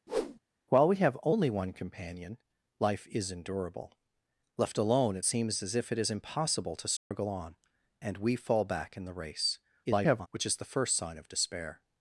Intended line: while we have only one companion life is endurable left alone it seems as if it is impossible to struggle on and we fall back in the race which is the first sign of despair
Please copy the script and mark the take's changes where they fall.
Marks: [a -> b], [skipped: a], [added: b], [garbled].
while we have only one companion life is endurable left alone it seems as if it is impossible to struggle on and we fall back in the race [garbled] which is the first sign of despair